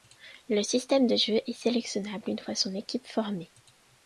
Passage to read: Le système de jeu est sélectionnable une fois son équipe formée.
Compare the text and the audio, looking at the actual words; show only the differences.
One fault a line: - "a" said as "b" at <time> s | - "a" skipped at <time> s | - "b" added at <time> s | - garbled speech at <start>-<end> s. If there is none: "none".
none